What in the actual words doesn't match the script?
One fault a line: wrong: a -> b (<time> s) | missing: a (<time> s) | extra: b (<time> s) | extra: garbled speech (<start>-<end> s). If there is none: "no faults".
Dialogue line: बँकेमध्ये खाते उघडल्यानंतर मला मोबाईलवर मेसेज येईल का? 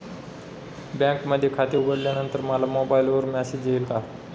no faults